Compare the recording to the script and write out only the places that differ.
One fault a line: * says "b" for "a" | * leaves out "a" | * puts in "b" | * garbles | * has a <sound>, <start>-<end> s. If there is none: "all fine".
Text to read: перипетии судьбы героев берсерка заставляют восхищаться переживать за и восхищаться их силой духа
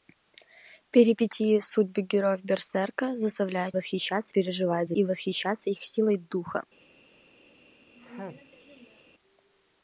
* has a sneeze, 7.9-9.0 s